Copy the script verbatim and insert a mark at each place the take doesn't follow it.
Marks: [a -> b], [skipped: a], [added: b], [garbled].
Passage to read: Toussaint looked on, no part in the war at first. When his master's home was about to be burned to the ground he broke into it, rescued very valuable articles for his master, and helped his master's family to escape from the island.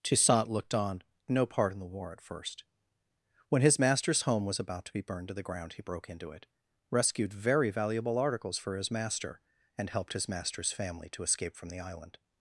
Toussaint looked on, no part in the war at first. When his master's home was about to be burned to the ground he broke into it, rescued very valuable articles for his master, and helped his master's family to escape from the island.